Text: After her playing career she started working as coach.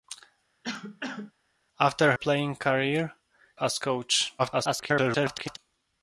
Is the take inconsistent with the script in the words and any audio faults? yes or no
yes